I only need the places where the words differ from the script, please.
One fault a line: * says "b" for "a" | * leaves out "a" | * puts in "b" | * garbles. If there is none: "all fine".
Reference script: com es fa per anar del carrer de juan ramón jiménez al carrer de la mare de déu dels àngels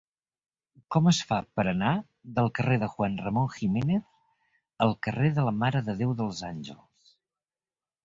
all fine